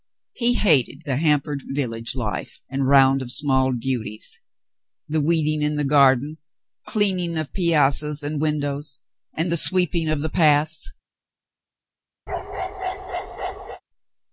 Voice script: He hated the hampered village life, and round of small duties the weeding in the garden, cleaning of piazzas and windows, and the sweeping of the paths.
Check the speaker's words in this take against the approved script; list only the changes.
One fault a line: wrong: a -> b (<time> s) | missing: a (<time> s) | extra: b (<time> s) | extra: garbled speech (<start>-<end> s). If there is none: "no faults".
no faults